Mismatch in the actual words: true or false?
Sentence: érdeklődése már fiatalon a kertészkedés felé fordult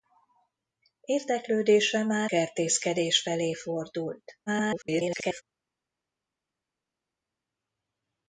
true